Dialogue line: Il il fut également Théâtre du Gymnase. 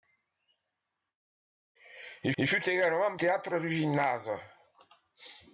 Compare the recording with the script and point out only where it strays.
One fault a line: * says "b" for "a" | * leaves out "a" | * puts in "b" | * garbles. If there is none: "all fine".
all fine